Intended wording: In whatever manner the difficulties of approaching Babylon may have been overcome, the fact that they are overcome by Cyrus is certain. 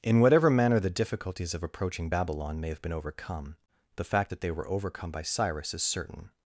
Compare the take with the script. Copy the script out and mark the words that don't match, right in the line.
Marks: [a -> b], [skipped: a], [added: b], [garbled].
In whatever manner the difficulties of approaching Babylon may have been overcome, the fact that they [are -> were] overcome by Cyrus is certain.